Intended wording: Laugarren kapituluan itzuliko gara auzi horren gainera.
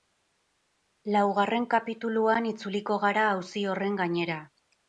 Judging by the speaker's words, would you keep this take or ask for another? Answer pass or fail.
pass